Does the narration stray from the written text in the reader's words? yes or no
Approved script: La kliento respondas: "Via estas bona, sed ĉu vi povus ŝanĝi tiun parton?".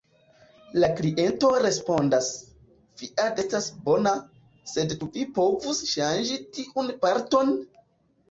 no